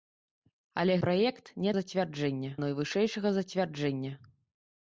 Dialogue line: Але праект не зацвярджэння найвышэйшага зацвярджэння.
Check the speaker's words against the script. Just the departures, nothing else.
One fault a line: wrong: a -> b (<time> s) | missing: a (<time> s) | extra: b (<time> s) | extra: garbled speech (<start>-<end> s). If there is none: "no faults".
no faults